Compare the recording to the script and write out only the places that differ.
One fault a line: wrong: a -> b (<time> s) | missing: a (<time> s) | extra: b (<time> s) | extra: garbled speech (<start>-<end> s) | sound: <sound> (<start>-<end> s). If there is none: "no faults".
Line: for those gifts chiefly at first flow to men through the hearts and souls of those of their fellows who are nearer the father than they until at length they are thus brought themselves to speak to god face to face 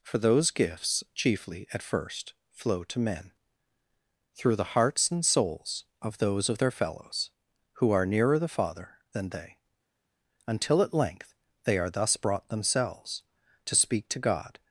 missing: face to face (14.6 s)